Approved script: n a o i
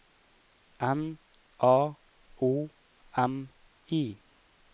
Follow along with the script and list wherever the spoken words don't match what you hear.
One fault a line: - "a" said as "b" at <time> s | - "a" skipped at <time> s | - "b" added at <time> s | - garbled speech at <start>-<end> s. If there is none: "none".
- "m" added at 3.2 s